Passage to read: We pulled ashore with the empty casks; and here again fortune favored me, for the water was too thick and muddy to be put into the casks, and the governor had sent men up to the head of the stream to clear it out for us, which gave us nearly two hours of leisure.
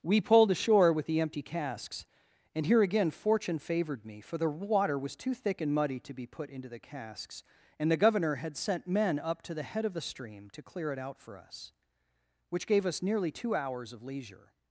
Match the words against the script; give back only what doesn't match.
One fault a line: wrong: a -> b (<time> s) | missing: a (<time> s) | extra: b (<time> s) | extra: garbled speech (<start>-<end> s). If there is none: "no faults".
no faults